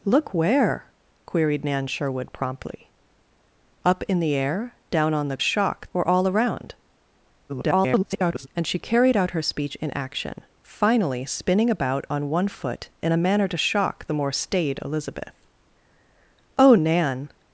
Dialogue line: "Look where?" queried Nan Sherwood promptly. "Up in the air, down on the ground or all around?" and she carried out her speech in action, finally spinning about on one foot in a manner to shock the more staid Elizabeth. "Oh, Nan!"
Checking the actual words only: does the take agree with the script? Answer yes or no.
no